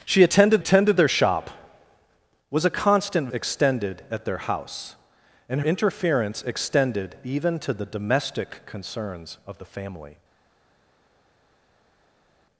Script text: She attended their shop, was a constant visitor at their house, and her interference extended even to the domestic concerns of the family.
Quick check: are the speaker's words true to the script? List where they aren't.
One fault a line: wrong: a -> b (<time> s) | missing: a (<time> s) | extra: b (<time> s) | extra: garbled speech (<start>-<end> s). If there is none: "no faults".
extra: attended (0.6 s)
wrong: visitor -> extended (3.3 s)
missing: her (5.6 s)